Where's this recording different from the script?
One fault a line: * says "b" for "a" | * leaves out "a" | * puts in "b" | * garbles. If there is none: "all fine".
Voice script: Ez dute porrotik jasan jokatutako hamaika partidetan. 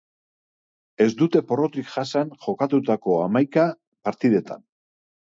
all fine